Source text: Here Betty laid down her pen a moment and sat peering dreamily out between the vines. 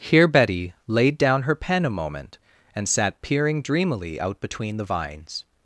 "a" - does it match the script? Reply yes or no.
yes